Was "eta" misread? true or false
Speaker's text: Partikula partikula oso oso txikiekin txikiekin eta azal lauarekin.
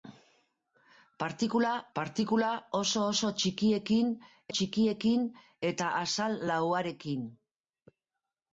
false